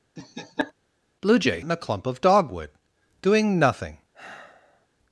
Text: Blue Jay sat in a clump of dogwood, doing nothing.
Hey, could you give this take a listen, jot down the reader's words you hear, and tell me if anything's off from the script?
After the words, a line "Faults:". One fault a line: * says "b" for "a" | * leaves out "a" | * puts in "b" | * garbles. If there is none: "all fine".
Blue Jay in a clump of dogwood, doing nothing.
Faults:
* leaves out "sat"